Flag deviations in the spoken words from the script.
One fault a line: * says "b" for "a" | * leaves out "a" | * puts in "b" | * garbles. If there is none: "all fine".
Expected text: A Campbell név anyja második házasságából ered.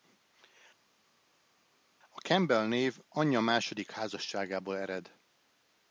all fine